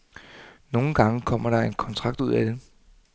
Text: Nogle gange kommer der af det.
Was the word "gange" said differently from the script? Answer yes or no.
no